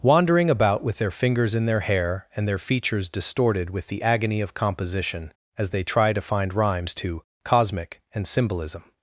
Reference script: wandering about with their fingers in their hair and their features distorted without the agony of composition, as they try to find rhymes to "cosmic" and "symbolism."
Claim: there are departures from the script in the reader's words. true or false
true